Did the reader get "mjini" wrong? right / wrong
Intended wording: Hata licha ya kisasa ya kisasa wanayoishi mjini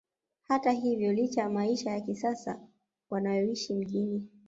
right